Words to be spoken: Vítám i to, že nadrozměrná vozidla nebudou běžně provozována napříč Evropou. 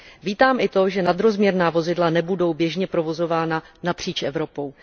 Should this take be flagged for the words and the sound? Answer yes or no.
no